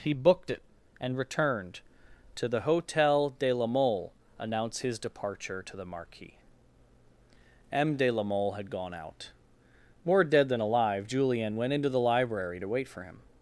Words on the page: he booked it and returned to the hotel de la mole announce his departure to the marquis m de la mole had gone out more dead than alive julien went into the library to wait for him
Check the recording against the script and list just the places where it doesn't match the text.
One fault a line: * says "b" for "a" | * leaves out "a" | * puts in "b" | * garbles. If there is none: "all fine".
all fine